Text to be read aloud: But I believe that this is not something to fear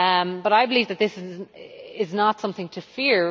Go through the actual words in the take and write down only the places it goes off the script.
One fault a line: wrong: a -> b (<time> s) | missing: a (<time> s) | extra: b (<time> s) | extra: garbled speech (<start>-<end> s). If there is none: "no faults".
no faults